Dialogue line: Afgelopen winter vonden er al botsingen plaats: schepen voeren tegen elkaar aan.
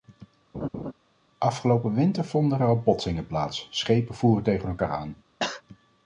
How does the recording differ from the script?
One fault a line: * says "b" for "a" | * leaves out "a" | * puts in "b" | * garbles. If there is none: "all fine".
all fine